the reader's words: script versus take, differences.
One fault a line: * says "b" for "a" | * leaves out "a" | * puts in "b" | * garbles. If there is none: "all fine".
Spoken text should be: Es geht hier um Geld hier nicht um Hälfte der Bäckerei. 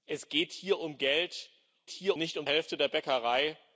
all fine